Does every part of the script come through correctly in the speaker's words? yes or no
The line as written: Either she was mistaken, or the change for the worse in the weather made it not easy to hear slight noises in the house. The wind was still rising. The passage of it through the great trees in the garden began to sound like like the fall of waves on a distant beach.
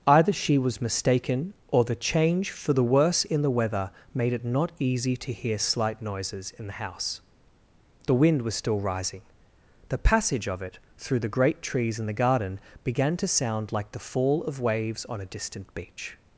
no